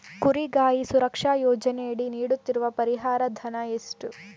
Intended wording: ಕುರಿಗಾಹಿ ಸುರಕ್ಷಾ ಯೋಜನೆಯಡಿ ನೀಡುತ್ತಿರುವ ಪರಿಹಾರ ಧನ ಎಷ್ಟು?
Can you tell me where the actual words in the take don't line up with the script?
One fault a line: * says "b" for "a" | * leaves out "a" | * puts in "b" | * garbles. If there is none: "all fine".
all fine